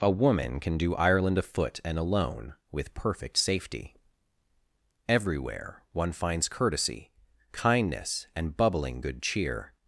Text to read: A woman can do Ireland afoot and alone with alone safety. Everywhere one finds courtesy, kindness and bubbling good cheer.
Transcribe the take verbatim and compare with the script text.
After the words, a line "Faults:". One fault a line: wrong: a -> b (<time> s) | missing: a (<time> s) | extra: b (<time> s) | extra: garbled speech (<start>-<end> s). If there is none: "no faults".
A woman can do Ireland afoot and alone with perfect safety. Everywhere one finds courtesy, kindness and bubbling good cheer.
Faults:
wrong: alone -> perfect (3.0 s)